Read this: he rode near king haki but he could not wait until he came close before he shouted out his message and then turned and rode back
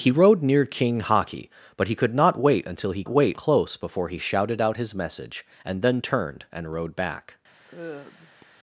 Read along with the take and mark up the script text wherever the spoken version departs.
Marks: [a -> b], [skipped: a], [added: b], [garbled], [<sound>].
he rode near king haki but he could not wait until he [came -> wait] close before he shouted out his message and then turned and rode back [sigh]